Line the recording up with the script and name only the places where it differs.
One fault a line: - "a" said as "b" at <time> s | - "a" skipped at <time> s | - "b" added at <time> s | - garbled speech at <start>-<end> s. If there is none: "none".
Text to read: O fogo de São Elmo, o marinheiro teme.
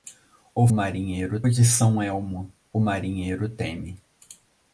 - "fogo" said as "marinheiro" at 0.7 s